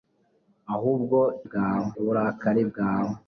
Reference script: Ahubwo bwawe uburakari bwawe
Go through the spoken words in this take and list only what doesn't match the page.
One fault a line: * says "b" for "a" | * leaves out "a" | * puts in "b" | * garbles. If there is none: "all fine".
all fine